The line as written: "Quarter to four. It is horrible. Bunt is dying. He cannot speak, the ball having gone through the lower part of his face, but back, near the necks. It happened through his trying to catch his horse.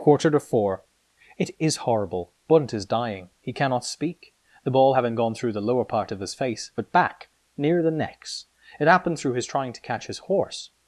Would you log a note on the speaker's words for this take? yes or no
no